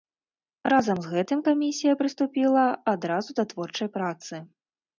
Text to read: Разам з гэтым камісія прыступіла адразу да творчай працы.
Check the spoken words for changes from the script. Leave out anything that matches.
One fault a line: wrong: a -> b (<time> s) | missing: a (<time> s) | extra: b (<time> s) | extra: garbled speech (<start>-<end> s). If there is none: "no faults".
no faults